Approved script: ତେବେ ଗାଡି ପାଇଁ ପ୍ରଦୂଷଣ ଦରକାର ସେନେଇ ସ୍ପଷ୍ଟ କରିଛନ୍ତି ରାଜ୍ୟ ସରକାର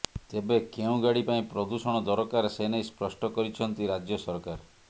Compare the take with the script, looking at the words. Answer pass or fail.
fail